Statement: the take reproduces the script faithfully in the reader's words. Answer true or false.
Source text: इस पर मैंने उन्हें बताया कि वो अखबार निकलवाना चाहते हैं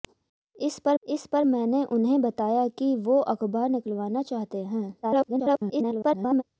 false